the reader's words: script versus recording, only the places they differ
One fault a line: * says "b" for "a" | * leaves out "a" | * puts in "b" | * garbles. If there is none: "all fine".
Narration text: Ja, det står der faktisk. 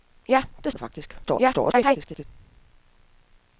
* leaves out "står"
* garbles